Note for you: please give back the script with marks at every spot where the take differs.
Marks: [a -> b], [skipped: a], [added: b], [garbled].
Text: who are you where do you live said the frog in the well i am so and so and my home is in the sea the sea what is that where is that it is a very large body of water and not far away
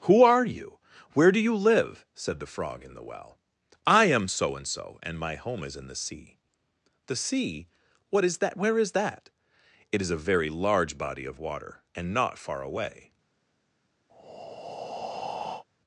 who are you where do you live said the frog in the well i am so and so and my home is in the sea the sea what is that where is that it is a very large body of water and not far away